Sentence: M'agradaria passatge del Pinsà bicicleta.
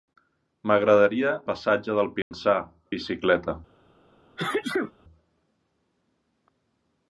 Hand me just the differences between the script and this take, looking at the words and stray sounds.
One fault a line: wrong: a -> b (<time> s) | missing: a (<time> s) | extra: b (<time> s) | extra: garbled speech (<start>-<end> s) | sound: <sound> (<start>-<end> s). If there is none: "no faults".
sound: dropout (2.2-2.3 s)
sound: sneeze (4.4-4.9 s)